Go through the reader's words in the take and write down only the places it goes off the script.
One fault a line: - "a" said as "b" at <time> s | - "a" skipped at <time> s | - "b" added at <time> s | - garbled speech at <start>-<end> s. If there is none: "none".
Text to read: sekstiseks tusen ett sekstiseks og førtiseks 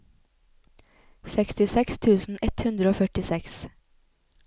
- "sekstiseks" said as "hundre" at 2.7 s